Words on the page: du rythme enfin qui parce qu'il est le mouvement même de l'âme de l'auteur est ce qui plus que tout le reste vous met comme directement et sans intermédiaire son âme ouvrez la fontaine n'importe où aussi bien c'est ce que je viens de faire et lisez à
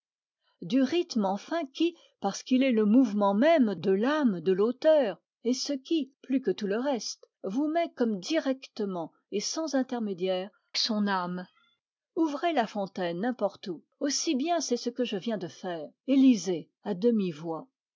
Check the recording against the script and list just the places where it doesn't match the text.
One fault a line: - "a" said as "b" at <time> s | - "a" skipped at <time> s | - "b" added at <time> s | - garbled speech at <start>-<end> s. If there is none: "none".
none